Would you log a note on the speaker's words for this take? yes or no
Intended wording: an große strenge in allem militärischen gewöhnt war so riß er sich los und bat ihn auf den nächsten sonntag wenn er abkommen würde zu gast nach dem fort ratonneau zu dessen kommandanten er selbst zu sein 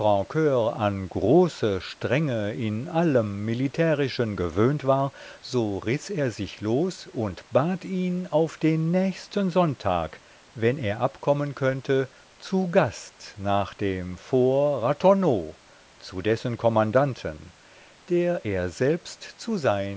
yes